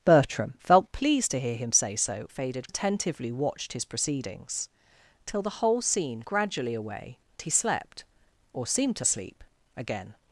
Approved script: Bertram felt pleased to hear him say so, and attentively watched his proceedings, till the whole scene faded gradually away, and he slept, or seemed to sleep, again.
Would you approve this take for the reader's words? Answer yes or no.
no